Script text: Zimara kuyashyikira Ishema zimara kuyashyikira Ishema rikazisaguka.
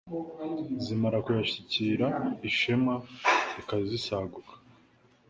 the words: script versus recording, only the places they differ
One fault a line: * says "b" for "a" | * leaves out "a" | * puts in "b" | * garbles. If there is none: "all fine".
* leaves out "zimara kuyashyikira Ishema"